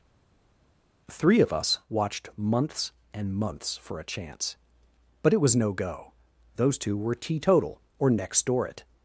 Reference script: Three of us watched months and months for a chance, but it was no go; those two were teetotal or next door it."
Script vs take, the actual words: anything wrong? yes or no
no